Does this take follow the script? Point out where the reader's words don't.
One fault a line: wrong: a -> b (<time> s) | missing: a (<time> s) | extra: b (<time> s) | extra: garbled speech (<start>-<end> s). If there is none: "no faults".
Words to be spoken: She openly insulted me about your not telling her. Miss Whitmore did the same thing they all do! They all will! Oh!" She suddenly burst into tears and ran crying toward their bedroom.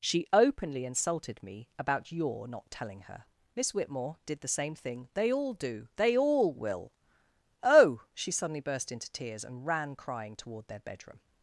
no faults